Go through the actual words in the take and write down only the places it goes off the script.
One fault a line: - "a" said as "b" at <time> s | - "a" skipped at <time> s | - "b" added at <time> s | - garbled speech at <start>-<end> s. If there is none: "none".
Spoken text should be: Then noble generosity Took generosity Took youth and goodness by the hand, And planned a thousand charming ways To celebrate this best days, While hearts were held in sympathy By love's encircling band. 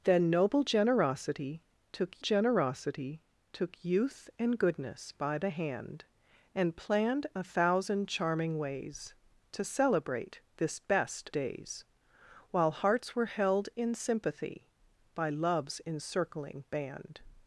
none